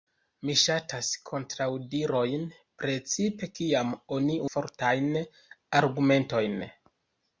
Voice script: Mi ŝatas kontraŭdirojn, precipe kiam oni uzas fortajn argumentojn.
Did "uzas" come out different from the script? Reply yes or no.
yes